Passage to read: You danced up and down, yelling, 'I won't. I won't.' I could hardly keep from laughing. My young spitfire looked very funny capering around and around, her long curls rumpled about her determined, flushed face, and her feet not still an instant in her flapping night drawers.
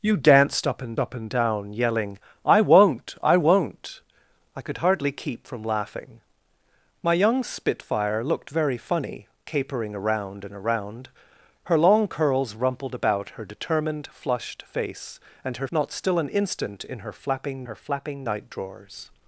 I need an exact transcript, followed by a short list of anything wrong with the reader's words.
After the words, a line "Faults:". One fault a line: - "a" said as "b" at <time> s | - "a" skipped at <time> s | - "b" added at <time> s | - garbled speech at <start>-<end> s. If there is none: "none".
You danced up and up and down, yelling, 'I won't. I won't.' I could hardly keep from laughing. My young spitfire looked very funny capering around and around, her long curls rumpled about her determined, flushed face, and her not still an instant in her flapping her flapping night drawers.
Faults:
- "up and" added at 1.0 s
- "feet" skipped at 15.7 s
- "her flapping" added at 17.6 s